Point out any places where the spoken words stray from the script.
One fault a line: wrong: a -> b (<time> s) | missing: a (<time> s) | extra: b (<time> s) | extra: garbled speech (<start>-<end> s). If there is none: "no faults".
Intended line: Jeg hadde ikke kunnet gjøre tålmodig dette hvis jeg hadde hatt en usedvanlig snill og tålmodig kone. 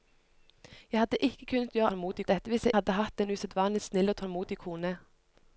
no faults